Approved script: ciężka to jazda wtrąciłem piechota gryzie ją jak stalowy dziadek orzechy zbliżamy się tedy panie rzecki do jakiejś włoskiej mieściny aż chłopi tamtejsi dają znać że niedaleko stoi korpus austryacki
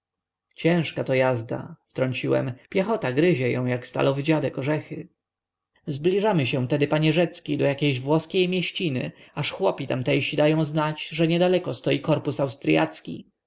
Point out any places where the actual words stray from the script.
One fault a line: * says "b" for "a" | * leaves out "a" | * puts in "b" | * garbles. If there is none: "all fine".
all fine